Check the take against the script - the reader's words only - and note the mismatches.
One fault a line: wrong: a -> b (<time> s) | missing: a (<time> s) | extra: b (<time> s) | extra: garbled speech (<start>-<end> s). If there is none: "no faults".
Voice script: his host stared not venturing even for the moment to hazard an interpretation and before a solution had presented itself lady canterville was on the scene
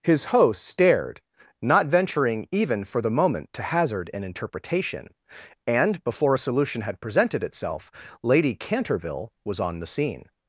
no faults